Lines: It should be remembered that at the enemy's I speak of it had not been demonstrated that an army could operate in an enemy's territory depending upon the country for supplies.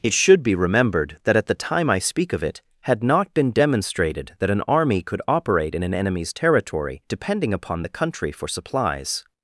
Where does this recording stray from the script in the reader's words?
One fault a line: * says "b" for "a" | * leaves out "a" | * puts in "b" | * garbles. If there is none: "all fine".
* says "time" for "enemy's"